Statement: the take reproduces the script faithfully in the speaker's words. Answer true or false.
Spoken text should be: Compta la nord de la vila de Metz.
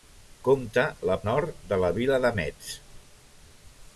true